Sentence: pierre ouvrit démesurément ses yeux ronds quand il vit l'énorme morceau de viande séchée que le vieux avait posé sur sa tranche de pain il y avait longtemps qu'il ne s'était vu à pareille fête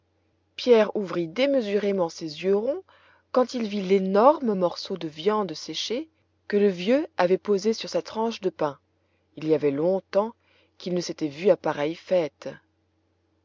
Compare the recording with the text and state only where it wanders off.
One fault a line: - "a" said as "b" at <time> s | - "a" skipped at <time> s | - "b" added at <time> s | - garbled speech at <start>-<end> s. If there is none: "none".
none